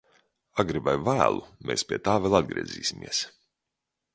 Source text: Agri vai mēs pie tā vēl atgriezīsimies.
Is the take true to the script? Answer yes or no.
no